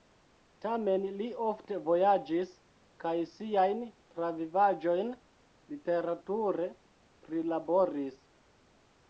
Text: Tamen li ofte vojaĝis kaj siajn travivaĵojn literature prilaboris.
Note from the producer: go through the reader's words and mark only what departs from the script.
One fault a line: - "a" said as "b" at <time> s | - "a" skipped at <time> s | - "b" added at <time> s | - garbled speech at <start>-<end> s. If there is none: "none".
none